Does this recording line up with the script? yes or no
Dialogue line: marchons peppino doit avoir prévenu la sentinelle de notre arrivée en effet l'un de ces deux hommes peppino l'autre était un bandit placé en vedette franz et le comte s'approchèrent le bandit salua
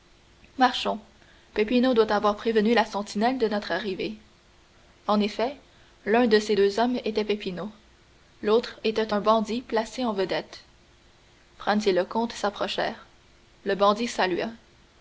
no